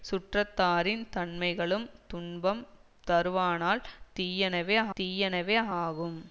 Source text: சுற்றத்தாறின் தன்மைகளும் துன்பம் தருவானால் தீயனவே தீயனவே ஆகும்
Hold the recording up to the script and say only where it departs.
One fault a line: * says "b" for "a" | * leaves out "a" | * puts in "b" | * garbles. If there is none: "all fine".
all fine